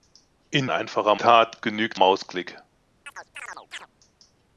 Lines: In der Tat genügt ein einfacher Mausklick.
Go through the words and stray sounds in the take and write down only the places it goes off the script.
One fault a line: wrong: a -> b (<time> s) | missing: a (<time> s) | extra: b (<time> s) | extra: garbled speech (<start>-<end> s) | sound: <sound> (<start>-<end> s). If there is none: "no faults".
wrong: der -> einfacher (0.7 s)
missing: ein einfacher (2.0 s)
sound: chirp (3.1-3.9 s)